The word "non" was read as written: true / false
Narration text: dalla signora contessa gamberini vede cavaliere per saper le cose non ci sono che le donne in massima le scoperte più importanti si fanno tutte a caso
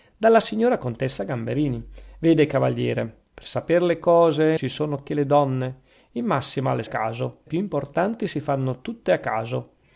false